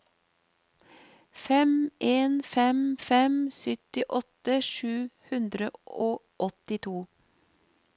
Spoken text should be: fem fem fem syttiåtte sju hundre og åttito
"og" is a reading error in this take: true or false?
false